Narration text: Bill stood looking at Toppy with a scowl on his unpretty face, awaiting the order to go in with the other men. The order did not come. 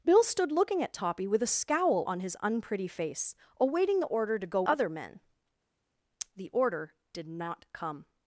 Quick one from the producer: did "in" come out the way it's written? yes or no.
no